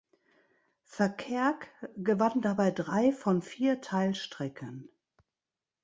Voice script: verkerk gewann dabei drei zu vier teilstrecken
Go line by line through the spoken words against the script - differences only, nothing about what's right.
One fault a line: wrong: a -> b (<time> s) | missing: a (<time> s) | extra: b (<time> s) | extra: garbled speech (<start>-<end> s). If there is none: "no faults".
wrong: zu -> von (3.1 s)